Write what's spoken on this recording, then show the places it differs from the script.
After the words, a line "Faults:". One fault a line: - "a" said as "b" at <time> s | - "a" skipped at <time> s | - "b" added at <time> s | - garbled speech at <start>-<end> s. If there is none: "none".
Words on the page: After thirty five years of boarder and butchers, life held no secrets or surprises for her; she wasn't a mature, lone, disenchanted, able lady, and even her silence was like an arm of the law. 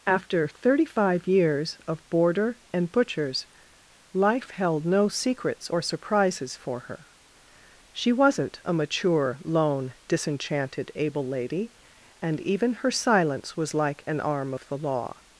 After thirty five years of boarder and butchers, life held no secrets or surprises for her; she wasn't a mature, lone, disenchanted, able lady, and even her silence was like an arm of the law.
Faults:
none